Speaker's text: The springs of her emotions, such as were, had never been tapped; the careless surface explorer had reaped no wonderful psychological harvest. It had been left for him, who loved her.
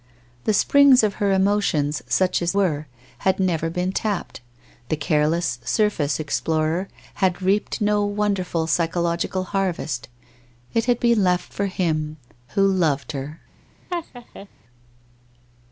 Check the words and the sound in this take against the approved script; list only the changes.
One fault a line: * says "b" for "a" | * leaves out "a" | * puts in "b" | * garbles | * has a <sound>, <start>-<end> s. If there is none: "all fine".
* has a laugh, 13.9-14.5 s